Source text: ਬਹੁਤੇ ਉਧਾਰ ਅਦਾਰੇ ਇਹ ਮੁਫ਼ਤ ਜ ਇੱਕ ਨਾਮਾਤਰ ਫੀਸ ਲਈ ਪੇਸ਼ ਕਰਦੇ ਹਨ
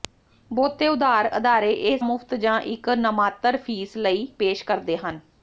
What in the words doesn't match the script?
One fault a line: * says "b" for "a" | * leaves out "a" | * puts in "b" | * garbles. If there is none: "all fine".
all fine